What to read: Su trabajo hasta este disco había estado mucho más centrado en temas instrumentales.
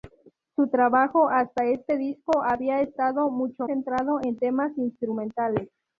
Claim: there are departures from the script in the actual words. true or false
true